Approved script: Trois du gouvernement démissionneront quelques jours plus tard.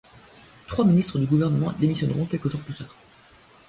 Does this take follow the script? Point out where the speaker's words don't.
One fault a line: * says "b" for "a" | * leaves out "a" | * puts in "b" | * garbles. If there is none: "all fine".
* puts in "ministres"